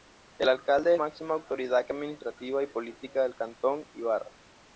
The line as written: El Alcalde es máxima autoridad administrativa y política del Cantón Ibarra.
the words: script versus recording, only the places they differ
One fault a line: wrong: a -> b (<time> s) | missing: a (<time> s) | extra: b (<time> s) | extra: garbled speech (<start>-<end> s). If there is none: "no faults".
no faults